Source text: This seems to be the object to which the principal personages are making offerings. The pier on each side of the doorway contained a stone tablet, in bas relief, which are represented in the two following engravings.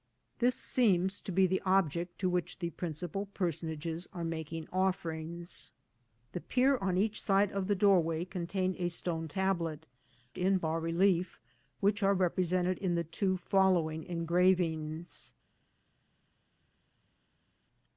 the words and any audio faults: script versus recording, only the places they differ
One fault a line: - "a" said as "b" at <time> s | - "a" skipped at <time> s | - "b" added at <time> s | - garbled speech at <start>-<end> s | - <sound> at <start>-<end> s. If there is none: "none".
none